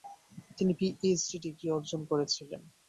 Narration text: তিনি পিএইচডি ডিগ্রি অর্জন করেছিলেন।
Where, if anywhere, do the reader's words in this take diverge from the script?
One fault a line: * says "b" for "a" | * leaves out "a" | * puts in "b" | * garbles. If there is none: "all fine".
all fine